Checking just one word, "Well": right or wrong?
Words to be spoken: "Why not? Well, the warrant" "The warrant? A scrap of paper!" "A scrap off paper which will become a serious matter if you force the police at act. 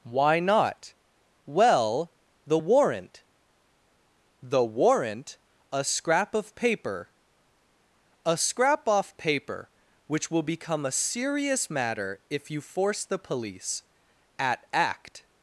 right